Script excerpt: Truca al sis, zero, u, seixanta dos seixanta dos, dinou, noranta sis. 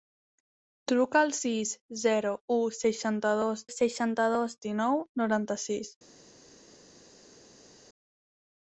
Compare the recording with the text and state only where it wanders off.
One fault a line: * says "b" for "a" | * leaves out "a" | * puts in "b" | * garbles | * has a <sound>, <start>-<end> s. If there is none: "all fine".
all fine